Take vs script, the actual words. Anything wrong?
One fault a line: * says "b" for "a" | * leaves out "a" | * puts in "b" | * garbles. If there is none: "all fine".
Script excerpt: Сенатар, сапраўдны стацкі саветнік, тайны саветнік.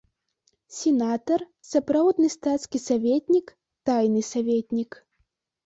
all fine